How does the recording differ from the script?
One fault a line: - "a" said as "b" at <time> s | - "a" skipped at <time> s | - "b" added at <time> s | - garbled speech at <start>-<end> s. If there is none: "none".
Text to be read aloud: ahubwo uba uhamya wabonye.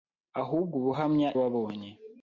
none